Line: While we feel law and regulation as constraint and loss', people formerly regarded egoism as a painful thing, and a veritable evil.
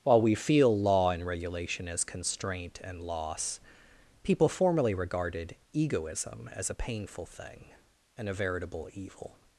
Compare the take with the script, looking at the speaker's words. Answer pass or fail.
pass